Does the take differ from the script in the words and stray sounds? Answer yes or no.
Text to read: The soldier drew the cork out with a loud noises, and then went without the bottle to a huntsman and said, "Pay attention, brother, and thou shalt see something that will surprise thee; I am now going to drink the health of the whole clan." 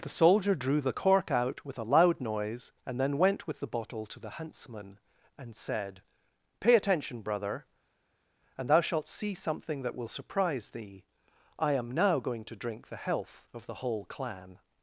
yes